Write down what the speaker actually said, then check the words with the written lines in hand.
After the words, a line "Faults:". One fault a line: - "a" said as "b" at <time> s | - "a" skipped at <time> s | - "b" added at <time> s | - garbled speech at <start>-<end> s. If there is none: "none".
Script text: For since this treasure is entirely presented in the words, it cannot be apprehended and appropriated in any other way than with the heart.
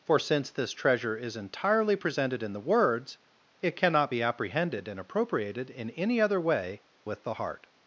For since this treasure is entirely presented in the words, it cannot be apprehended and appropriated in any other way with the heart.
Faults:
- "than" skipped at 6.8 s